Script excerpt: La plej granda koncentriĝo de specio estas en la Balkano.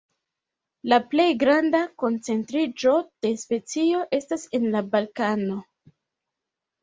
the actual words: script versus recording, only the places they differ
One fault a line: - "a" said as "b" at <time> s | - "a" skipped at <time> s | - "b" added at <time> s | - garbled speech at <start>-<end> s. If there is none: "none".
none